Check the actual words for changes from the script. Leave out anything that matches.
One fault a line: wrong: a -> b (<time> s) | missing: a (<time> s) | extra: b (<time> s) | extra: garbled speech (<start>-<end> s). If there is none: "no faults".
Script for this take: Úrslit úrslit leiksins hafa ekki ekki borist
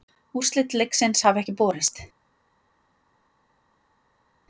missing: úrslit (0.7 s)
missing: ekki (1.6 s)